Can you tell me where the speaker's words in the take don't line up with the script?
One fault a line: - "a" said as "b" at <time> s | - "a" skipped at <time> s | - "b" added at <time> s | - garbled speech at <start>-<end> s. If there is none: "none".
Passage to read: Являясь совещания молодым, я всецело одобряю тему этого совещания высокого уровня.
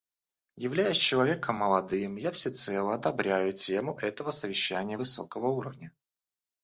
- "совещания" said as "человеком" at 1.0 s